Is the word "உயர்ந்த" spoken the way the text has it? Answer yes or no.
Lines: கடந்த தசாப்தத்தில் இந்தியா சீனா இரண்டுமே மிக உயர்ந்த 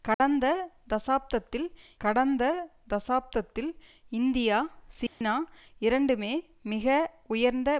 yes